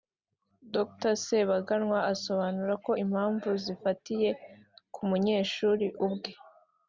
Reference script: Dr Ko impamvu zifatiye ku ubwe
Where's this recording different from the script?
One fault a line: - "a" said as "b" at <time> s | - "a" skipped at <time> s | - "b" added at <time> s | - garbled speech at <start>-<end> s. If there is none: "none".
- "Sebaganwa asobanura" added at 1.2 s
- "munyeshuri" added at 5.1 s